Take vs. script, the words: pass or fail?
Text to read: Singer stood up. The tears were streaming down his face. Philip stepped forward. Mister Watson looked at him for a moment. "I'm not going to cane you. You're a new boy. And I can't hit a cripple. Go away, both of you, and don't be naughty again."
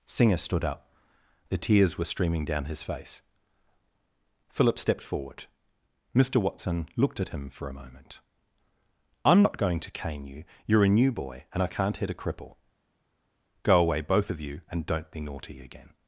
pass